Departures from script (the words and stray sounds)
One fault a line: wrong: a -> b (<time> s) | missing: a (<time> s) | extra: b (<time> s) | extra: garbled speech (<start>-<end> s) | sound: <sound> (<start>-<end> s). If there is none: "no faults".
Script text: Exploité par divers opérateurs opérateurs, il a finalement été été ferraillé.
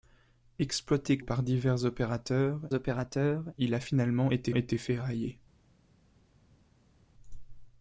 no faults